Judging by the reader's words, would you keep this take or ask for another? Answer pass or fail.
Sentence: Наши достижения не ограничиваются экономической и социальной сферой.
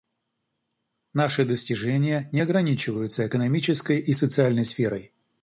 pass